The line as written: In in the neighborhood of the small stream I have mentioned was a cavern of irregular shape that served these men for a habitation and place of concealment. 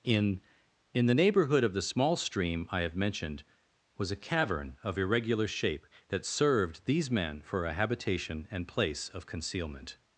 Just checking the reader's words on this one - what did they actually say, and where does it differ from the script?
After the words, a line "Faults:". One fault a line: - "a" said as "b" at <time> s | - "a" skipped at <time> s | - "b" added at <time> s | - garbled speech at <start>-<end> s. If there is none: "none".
In in the neighborhood of the small stream I have mentioned was a cavern of irregular shape that served these men for a habitation and place of concealment.
Faults:
none